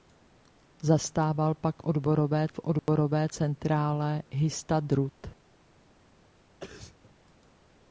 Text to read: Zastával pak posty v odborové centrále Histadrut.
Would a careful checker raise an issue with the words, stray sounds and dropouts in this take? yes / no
yes